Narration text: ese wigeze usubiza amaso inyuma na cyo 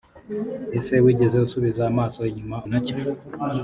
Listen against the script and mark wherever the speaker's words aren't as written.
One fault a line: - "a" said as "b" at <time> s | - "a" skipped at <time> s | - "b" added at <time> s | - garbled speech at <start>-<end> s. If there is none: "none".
none